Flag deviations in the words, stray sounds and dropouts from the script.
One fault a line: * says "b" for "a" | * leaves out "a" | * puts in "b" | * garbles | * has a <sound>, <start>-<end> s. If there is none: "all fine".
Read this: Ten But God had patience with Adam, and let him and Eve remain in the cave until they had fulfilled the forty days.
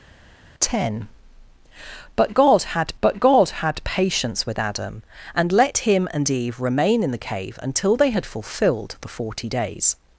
* puts in "But God had"